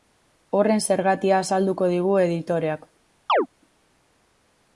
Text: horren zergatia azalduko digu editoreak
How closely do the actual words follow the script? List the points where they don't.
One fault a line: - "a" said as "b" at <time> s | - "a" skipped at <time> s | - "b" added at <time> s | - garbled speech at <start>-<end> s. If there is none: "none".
none